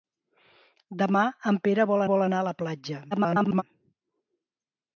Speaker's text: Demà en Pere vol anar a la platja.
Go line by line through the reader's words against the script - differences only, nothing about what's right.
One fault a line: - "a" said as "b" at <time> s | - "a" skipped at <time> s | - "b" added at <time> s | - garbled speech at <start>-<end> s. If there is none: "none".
- "vol" added at 2.1 s
- garbled speech at 3.1-3.6 s